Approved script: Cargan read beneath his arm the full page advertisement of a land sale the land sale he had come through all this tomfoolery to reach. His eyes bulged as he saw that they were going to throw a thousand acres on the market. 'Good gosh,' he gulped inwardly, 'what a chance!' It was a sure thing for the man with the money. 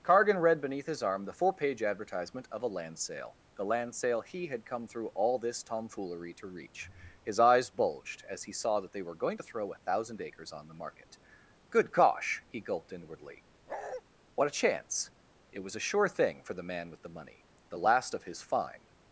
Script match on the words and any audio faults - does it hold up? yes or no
no